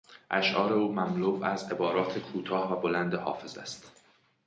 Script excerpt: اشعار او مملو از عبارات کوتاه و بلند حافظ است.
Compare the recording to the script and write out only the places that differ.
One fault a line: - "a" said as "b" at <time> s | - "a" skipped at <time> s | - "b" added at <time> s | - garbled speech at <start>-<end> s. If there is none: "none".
none